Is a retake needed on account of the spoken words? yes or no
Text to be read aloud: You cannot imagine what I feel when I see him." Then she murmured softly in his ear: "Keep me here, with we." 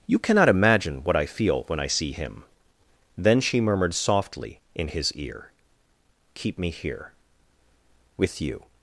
yes